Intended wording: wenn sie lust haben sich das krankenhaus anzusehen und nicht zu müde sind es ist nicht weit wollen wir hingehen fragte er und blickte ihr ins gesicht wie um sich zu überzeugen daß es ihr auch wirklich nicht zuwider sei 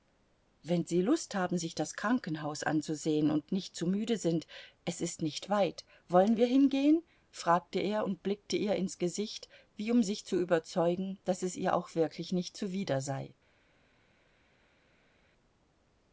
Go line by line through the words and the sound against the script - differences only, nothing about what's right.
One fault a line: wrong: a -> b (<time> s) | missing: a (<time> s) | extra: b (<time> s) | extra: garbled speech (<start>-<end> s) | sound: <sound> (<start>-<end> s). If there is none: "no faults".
no faults